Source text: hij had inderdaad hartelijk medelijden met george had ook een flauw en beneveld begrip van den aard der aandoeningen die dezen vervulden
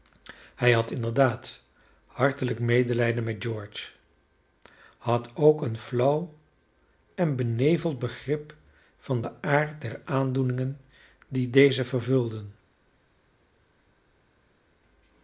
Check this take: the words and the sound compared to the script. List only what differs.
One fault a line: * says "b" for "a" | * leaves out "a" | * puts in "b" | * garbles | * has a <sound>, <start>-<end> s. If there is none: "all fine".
all fine